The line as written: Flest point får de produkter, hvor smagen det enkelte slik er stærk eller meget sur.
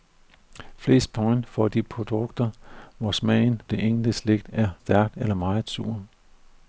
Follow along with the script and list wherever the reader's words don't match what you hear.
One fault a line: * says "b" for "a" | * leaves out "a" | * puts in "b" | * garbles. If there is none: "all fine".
all fine